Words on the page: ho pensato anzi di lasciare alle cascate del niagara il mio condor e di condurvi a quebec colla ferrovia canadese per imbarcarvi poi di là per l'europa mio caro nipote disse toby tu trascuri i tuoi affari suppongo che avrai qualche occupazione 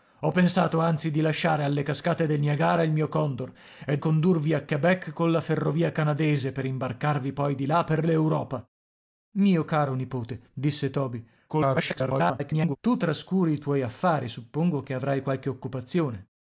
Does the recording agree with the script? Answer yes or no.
no